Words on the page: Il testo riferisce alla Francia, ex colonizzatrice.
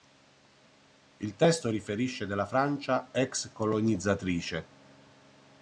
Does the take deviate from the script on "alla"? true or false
true